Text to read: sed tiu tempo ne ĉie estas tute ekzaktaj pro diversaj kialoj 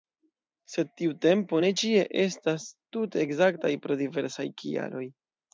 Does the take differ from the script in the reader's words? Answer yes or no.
no